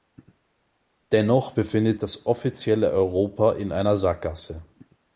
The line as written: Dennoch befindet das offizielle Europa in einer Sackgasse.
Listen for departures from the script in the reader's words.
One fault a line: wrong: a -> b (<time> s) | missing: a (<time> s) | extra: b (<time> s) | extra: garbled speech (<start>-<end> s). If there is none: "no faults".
no faults